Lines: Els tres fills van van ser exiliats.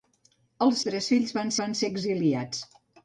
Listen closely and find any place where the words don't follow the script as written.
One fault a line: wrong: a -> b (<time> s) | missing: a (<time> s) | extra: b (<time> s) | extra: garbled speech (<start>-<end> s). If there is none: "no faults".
no faults